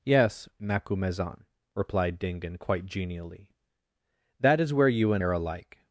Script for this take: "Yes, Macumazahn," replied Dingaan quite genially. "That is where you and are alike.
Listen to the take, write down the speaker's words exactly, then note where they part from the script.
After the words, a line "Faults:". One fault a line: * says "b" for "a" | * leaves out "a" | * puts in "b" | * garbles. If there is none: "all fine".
"Yes, Macumazahn," replied Dingaan quite genially. "That is where you and are alike.
Faults:
all fine